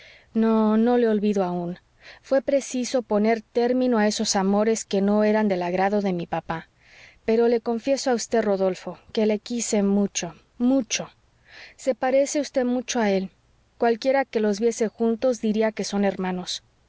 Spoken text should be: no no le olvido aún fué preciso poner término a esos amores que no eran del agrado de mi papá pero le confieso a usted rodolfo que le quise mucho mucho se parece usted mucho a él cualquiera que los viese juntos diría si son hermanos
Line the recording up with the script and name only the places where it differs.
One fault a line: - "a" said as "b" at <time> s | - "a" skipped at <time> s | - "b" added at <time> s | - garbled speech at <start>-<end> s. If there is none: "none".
- "si" said as "que" at 15.7 s